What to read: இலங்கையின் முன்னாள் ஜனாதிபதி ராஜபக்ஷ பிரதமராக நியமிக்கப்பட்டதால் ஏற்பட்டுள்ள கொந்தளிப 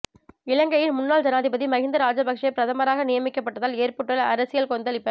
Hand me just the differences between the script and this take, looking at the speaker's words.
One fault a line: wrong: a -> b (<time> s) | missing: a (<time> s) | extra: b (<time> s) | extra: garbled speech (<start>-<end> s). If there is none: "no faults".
extra: மஹிந்த (1.7 s)
extra: அரசியல் (4.3 s)